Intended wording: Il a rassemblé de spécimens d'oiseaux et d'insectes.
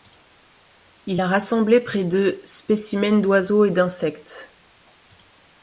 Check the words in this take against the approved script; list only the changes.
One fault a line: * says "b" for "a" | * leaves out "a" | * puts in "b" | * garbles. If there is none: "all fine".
* puts in "près"